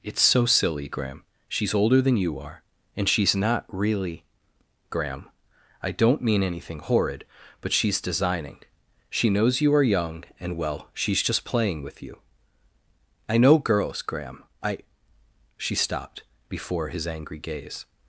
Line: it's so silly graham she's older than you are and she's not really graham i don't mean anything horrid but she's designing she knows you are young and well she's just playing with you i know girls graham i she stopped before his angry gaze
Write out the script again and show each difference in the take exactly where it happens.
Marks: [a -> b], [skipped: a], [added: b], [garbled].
it's so silly graham she's older than you are and she's not really graham i don't mean anything horrid but she's designing she knows you are young and well she's just playing with you i know girls graham i she stopped before his angry gaze